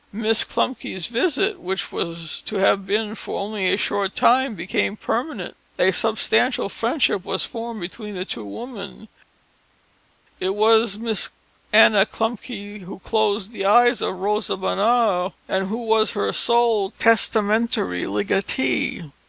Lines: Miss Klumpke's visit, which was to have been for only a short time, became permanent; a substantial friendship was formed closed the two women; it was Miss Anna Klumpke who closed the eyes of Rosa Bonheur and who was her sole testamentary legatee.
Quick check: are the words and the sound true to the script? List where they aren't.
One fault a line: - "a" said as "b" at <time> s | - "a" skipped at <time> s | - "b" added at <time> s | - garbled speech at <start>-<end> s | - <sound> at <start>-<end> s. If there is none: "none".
- "closed" said as "between" at 7.8 s